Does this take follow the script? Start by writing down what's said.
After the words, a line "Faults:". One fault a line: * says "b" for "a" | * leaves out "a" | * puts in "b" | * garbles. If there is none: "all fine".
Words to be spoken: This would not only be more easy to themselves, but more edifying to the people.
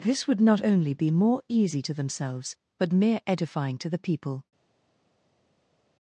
This would not only be more easy to themselves, but mere edifying to the people.
Faults:
* says "mere" for "more"